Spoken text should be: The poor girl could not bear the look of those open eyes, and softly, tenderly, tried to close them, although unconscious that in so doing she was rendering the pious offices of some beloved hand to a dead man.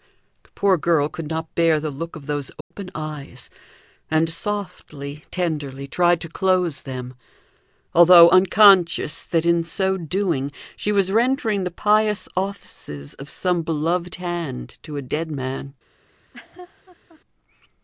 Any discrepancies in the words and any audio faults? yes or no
yes